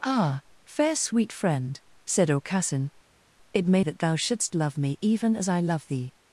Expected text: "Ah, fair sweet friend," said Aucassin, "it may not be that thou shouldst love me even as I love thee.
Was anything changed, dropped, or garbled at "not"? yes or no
yes